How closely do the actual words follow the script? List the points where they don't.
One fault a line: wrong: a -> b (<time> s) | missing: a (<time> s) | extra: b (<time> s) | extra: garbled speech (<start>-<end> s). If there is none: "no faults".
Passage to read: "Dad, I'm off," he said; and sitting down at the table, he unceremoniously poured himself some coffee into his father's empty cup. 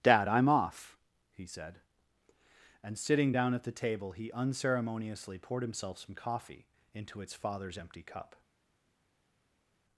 wrong: his -> its (7.2 s)